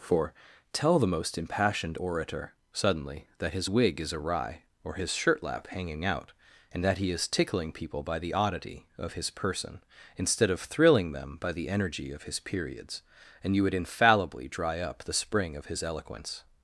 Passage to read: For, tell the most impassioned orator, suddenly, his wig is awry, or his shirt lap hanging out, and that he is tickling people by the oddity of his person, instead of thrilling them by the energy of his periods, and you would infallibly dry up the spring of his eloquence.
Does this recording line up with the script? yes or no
no